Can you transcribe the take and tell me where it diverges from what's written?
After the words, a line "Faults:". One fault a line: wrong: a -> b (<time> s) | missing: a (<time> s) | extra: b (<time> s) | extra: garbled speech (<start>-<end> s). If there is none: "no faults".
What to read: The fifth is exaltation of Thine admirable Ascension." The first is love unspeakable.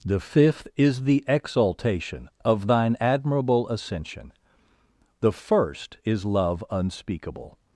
The fifth is the exaltation of Thine admirable Ascension." The first is love unspeakable.
Faults:
extra: the (1.0 s)